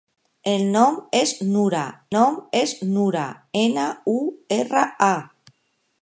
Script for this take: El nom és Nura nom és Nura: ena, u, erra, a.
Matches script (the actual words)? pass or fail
pass